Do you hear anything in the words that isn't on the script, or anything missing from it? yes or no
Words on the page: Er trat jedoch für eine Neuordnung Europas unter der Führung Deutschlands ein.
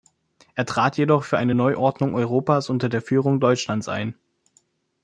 no